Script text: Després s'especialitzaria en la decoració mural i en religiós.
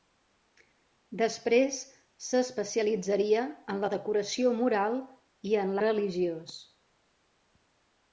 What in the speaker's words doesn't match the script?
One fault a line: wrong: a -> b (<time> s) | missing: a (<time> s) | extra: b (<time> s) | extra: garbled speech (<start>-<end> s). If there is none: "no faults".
no faults